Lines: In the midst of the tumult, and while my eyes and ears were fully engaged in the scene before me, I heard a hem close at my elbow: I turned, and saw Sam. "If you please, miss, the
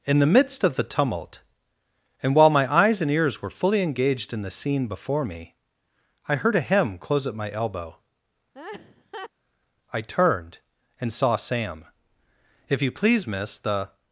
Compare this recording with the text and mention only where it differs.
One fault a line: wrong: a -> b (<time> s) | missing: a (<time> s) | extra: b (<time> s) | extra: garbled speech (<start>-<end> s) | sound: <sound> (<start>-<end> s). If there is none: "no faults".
sound: laugh (8.5-9.3 s)